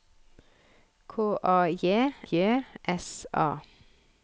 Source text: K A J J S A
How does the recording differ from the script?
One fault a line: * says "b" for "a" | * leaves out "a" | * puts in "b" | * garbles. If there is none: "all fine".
all fine